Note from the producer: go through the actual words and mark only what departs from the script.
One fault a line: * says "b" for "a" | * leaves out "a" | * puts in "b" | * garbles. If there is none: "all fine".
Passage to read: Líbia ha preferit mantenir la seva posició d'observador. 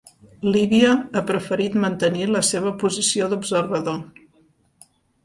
all fine